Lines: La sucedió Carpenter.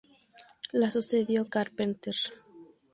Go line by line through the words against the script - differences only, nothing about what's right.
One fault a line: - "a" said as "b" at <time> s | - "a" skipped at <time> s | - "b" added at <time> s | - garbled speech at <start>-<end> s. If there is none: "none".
none